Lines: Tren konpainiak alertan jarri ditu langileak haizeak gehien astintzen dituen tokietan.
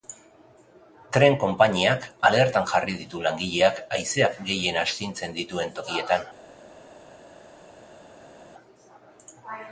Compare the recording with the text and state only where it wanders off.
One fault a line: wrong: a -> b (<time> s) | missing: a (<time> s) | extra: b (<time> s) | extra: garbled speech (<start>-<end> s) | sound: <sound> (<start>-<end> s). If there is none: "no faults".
no faults